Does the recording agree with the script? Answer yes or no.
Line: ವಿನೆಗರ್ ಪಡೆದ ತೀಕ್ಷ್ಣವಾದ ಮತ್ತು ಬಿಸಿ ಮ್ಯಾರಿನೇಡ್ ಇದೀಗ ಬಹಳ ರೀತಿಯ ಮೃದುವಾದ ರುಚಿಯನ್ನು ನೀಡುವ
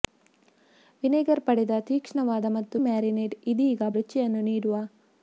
no